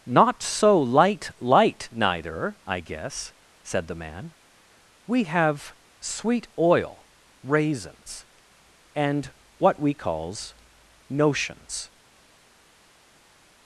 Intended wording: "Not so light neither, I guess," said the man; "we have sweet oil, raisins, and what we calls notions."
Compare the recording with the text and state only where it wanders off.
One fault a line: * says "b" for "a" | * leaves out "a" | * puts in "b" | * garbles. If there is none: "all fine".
* puts in "light"